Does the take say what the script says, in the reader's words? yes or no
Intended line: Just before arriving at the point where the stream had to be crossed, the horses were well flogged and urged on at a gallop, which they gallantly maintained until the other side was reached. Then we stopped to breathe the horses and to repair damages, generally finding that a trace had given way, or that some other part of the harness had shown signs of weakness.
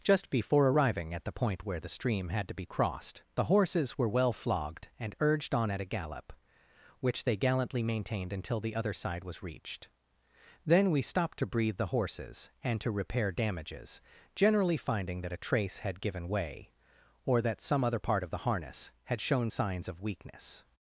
yes